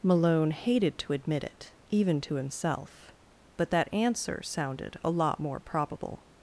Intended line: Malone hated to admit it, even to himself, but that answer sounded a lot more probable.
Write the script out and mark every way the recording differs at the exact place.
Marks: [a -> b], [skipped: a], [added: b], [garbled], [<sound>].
Malone hated to admit it, even to himself, but that answer sounded a lot more probable.